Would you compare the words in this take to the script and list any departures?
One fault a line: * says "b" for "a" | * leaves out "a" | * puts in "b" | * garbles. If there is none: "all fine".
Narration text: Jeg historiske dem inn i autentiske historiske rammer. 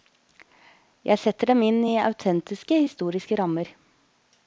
* says "setter" for "historiske"